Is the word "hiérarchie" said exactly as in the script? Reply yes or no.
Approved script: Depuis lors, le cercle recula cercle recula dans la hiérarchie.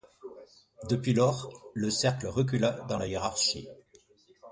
yes